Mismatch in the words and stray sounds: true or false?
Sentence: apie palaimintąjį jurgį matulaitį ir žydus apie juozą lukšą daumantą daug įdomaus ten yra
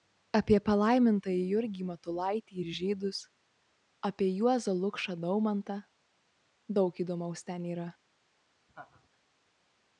true